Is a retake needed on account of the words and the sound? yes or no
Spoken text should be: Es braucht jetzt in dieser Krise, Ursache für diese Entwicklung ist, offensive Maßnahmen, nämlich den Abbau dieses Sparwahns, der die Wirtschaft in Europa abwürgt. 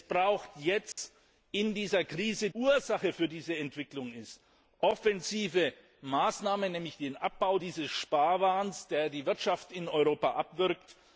yes